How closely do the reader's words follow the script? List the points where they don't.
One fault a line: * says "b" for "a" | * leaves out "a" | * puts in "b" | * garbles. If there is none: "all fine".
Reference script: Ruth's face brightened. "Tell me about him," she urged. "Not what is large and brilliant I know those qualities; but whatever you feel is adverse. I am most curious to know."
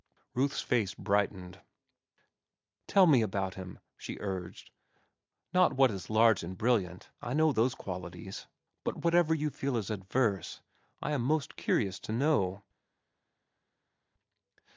all fine